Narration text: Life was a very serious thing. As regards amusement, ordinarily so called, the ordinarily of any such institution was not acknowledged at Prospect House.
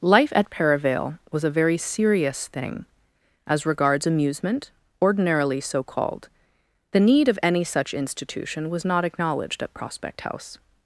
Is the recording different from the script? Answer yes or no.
yes